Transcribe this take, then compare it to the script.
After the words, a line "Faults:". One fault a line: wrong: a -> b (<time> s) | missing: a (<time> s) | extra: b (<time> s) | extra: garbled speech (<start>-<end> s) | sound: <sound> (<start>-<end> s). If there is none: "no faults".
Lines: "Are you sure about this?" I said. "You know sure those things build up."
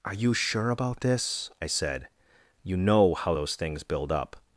"Are you sure about this?" I said. "You know how those things build up."
Faults:
wrong: sure -> how (3.1 s)